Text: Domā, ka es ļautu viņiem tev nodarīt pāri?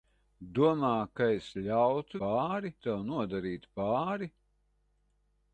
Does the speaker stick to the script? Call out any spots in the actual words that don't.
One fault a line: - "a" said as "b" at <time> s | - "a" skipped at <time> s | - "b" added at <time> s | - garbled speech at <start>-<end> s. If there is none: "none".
- "viņiem" said as "pāri" at 2.2 s